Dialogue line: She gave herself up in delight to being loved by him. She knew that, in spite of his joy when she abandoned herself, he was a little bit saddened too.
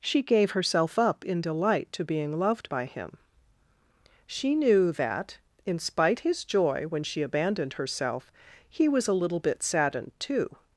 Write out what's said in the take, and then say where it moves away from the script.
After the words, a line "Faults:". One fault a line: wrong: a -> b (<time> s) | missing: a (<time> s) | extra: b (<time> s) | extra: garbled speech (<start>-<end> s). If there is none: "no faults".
She gave herself up in delight to being loved by him. She knew that, in spite his joy when she abandoned herself, he was a little bit saddened too.
Faults:
missing: of (6.2 s)